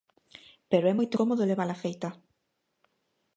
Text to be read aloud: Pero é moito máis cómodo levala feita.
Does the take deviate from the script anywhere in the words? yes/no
yes